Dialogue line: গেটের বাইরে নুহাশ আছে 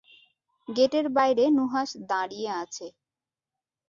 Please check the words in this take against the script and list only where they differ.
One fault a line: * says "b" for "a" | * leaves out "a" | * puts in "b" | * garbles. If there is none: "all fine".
* puts in "দাঁড়িয়ে"